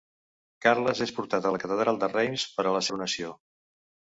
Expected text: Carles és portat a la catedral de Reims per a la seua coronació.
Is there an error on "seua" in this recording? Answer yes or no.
yes